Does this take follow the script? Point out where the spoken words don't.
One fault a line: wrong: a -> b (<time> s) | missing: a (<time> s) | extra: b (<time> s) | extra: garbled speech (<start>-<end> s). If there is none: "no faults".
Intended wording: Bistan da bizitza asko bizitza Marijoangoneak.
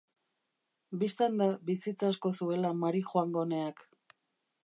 wrong: bizitza -> zuela (2.4 s)